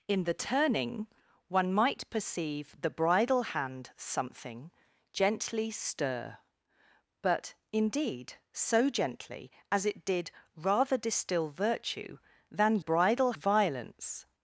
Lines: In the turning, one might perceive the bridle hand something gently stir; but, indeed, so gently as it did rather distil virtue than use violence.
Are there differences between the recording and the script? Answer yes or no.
yes